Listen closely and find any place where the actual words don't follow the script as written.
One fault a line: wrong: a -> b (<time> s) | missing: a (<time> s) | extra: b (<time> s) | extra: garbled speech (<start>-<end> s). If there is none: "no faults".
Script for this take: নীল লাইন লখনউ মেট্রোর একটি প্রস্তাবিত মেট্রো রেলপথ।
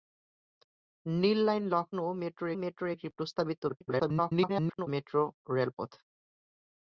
extra: মেট্রোর (2.6 s)
extra: garbled speech (3.7-4.9 s)